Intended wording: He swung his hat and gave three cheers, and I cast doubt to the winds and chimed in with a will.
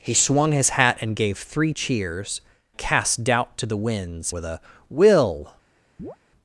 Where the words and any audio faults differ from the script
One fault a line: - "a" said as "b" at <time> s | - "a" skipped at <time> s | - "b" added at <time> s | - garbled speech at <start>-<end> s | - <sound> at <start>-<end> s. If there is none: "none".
- "and I" skipped at 2.4 s
- "and chimed in" skipped at 4.3 s
- chirp at 6.0-6.2 s